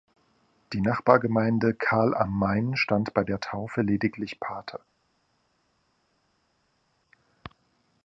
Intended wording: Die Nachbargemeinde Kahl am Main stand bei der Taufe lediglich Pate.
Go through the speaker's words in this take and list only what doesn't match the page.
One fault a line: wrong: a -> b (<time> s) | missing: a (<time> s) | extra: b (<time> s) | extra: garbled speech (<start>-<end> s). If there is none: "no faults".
no faults